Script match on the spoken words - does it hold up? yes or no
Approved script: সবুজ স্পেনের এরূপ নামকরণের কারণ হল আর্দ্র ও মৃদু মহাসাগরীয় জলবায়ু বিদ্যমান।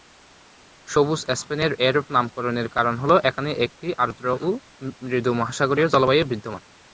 no